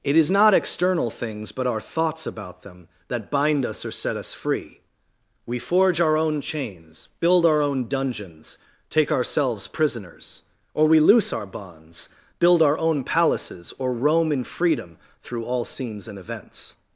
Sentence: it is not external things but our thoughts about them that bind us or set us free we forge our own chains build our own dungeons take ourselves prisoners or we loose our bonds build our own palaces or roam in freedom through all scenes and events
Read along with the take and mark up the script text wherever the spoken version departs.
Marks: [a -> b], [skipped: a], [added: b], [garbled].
it is not external things but our thoughts about them that bind us or set us free we forge our own chains build our own dungeons take ourselves prisoners or we loose our bonds build our own palaces or roam in freedom through all scenes and events